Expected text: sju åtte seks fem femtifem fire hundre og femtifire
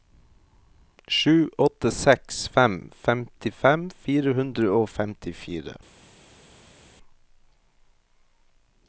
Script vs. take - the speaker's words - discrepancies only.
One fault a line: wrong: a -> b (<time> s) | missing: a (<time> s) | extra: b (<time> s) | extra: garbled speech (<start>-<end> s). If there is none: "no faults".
no faults